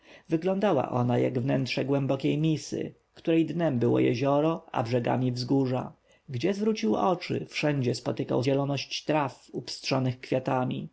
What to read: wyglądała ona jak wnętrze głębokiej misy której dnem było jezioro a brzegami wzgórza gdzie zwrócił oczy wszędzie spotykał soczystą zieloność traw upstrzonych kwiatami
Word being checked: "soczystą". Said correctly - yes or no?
no